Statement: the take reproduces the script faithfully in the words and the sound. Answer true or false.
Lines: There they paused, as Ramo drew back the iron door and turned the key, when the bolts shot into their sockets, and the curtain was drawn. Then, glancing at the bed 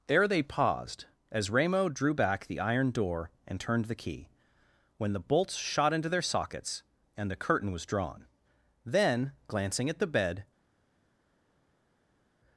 true